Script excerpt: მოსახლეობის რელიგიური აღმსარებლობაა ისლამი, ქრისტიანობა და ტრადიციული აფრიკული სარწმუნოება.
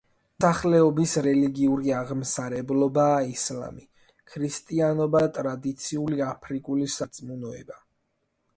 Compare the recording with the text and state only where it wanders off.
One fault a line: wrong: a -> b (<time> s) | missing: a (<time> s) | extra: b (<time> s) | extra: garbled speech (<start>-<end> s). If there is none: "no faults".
no faults